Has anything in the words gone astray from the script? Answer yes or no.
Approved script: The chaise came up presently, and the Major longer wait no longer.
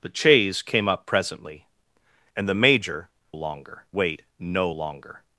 no